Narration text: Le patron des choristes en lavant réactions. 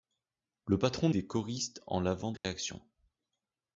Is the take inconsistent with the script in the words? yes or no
no